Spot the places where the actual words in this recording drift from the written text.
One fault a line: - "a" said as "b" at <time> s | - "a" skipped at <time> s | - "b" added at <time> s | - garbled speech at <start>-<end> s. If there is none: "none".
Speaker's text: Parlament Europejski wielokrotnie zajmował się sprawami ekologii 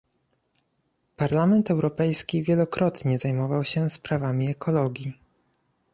none